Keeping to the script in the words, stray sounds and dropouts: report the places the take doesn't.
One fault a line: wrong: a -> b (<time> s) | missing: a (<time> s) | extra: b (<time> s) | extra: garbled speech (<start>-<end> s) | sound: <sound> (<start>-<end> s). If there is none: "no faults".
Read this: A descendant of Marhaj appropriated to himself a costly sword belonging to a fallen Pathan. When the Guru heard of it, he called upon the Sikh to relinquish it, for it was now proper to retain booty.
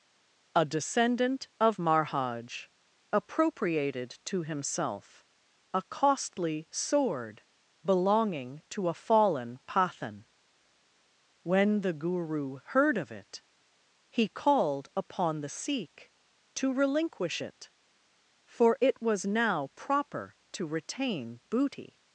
no faults